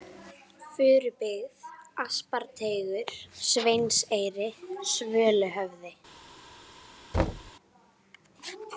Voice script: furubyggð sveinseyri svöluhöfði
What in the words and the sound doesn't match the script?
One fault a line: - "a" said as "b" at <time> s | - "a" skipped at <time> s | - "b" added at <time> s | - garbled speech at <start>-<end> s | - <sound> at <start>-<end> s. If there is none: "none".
- "asparteigur" added at 2.0 s
- thud at 7.1-7.5 s